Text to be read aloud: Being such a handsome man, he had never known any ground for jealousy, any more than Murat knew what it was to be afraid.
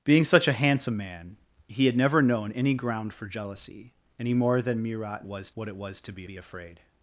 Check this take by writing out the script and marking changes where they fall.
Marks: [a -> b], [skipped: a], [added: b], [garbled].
Being such a handsome man, he had never known any ground for jealousy, any more than Murat [knew -> was] what it was to be [added: be] afraid.